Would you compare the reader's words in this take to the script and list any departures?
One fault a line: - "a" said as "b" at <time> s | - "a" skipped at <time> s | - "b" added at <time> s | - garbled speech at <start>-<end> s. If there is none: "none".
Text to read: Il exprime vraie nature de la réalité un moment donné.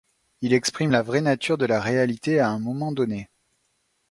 - "la" added at 0.9 s
- "à" added at 2.4 s